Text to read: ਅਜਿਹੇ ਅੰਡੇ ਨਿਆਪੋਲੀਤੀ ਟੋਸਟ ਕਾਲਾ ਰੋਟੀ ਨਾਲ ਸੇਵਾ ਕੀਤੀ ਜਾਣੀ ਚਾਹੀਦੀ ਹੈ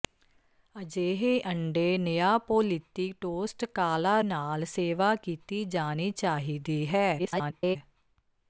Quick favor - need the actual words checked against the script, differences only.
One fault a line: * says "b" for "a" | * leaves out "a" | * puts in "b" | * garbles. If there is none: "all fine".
* leaves out "ਰੋਟੀ"
* garbles